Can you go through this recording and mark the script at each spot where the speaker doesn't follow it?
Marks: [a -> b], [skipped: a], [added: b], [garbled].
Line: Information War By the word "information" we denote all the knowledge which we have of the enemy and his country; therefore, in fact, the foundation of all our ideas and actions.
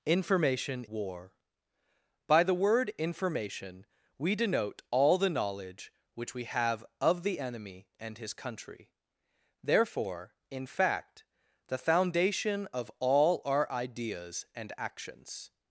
Information War By the word "information" we denote all the knowledge which we have of the enemy and his country; therefore, in fact, the foundation of all our ideas and actions.